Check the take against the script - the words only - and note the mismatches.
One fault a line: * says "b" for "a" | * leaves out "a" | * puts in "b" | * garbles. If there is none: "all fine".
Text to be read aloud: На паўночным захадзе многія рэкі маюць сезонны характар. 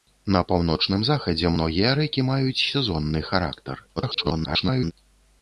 * garbles